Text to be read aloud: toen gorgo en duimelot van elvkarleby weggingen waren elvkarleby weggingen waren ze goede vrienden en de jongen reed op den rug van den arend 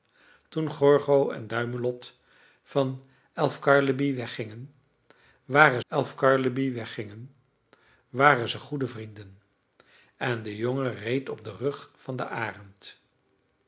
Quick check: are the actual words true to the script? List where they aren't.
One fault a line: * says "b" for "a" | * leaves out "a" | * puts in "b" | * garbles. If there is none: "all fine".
all fine